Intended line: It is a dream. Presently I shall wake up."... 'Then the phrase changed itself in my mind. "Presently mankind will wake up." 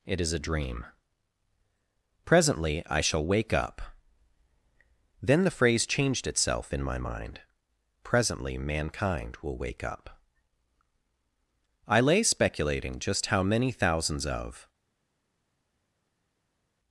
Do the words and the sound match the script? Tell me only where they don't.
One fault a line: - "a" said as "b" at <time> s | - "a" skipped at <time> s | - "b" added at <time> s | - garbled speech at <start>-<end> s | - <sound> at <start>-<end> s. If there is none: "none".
- "I lay speculating just how many thousands of" added at 11.9 s